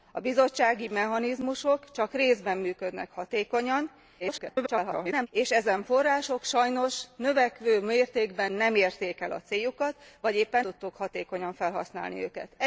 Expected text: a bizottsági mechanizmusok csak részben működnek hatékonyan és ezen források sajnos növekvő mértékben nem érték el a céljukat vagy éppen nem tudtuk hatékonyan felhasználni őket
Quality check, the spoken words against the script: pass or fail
fail